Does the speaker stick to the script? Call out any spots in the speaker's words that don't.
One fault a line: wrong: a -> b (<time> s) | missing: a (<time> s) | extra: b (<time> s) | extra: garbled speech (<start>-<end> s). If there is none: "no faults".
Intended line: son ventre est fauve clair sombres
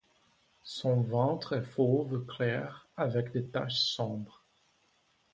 extra: avec des taches (3.0 s)